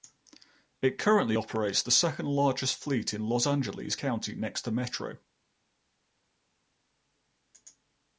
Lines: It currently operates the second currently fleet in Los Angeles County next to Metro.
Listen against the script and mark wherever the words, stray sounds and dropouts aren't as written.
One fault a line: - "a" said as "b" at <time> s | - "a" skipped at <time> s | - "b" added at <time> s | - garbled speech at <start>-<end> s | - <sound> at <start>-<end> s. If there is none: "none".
- "currently" said as "largest" at 2.3 s